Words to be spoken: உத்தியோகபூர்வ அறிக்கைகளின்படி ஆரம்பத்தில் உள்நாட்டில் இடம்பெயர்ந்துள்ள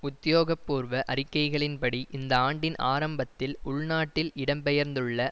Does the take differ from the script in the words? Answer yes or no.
yes